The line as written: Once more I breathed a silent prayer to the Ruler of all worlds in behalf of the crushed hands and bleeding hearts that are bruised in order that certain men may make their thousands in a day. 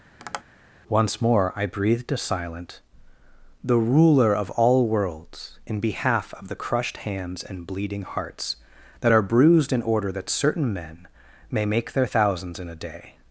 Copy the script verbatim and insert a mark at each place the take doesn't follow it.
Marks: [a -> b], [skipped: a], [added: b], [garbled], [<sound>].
[tap] Once more I breathed a silent [skipped: prayer to] the Ruler of all worlds in behalf of the crushed hands and bleeding hearts that are bruised in order that certain men may make their thousands in a day.